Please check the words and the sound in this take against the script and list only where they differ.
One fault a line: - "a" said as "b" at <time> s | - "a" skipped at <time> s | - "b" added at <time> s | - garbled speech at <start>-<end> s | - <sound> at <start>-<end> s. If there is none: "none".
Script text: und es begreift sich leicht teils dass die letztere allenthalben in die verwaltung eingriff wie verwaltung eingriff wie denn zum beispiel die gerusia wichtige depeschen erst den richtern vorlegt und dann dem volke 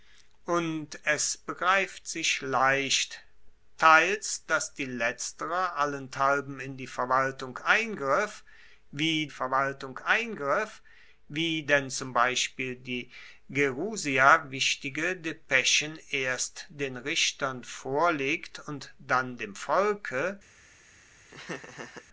- laugh at 21.3-22.1 s